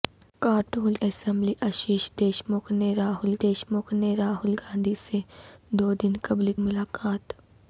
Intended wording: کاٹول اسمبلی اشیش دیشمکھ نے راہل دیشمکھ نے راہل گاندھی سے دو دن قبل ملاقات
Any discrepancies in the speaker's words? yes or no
no